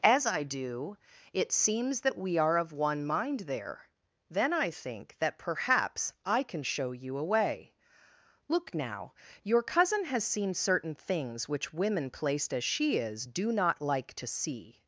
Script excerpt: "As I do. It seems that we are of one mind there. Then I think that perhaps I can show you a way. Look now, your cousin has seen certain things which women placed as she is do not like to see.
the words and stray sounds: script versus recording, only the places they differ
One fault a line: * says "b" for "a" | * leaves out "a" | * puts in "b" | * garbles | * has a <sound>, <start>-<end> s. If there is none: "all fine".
all fine